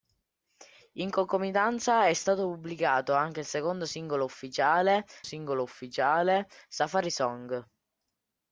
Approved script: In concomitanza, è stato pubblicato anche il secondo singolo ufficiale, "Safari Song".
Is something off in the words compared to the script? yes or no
yes